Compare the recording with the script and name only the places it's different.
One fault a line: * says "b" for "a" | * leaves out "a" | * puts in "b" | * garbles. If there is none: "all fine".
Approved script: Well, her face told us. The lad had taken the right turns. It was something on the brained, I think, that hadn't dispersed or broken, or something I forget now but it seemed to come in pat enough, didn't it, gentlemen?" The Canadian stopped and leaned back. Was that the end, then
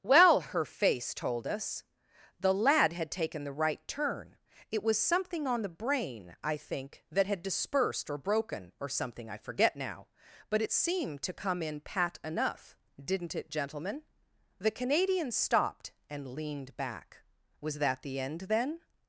* says "turn" for "turns"
* says "brain" for "brained"
* says "had" for "hadn't"